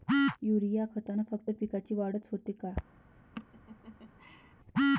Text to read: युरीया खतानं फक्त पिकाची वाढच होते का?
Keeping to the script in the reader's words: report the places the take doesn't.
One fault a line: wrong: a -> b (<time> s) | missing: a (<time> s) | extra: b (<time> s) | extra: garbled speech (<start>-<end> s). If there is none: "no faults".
no faults